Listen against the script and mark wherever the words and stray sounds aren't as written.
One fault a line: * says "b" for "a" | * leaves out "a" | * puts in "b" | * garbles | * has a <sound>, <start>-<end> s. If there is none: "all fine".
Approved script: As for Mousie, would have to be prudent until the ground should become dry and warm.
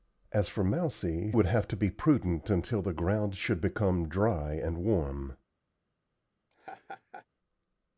* has a laugh, 6.5-7.3 s